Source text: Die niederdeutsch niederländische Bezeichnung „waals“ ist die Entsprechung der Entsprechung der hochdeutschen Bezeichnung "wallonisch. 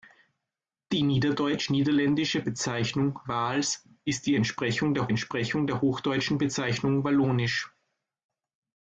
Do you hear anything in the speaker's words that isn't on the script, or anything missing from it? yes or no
no